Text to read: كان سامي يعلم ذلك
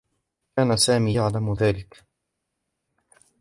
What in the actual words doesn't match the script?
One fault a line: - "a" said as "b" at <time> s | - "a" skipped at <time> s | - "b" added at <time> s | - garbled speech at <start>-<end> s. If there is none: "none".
none